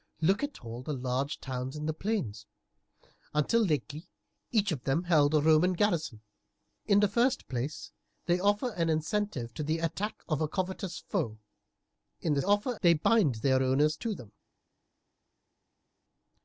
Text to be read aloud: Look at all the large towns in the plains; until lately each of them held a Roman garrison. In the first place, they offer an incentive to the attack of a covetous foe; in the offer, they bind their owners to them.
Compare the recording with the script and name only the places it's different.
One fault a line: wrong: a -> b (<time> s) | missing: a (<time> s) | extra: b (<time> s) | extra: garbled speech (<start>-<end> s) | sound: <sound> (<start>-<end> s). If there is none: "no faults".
no faults